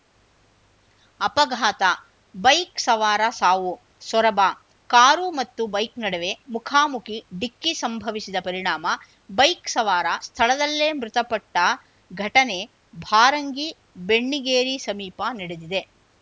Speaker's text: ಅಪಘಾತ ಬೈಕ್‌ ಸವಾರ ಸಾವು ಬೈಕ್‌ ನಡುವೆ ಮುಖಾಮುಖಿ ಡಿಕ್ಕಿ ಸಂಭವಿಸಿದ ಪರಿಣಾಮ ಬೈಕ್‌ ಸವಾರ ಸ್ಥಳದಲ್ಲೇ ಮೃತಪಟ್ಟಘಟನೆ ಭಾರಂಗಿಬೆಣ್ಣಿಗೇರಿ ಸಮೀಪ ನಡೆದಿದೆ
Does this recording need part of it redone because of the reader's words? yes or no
yes